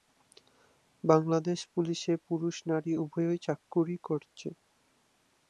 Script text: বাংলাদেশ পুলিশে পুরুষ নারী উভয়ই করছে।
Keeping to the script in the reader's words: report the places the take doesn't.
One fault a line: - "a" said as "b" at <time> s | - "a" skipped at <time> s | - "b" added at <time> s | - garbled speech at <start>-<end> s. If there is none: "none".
- "চাকুরী" added at 3.4 s